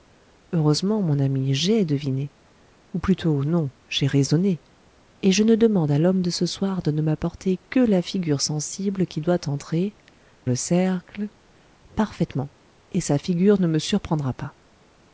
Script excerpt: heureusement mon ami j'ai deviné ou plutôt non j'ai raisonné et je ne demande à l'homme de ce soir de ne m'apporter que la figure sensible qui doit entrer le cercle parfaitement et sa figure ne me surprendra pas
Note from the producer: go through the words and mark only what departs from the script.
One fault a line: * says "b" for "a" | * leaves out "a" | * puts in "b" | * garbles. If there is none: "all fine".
all fine